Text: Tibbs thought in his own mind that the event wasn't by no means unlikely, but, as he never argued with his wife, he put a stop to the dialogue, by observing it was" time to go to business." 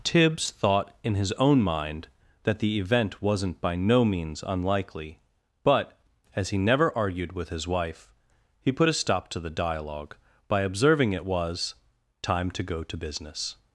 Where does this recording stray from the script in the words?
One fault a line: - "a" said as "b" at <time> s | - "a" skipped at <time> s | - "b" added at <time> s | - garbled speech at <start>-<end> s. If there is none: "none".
none